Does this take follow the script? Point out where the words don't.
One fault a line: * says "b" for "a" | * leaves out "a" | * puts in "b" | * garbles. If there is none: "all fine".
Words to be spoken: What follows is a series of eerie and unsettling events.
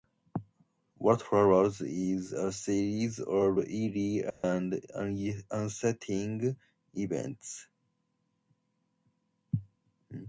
all fine